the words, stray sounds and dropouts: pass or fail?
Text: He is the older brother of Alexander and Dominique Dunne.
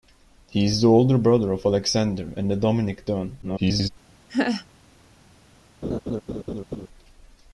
fail